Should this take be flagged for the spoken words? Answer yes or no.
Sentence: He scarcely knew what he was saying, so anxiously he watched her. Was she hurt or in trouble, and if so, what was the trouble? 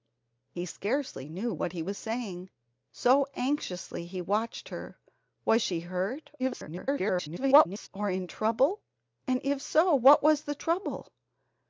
yes